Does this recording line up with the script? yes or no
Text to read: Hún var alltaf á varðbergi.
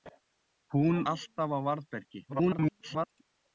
no